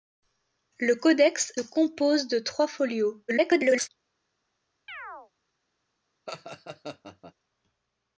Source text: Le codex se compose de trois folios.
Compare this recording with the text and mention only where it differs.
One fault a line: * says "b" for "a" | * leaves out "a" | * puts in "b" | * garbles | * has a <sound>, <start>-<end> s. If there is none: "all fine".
* leaves out "se"
* garbles
* has a chirp, 4.9-5.3 s
* has a laugh, 6.3-7.3 s